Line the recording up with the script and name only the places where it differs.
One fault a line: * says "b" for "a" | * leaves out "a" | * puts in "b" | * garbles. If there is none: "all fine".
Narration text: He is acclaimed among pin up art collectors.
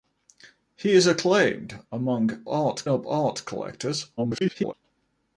* says "art" for "pin"
* garbles